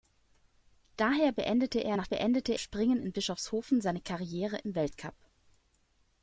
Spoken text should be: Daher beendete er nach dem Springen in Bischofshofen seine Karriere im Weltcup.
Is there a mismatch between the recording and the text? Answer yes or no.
yes